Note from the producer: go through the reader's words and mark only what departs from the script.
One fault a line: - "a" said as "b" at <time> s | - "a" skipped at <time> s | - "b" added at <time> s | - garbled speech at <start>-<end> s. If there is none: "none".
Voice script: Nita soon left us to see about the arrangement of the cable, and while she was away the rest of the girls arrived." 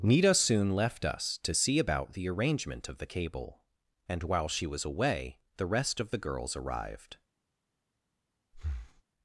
none